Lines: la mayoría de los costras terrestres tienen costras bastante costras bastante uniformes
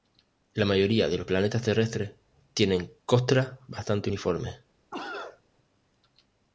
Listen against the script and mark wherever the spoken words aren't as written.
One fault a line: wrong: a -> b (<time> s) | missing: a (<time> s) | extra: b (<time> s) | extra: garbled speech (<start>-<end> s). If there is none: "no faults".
wrong: costras -> planetas (1.2 s)
missing: costras bastante (4.1 s)